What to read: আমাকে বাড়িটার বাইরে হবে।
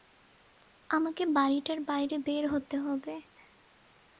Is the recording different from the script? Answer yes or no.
yes